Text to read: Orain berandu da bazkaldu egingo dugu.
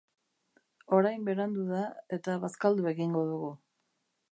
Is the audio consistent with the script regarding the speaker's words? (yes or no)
no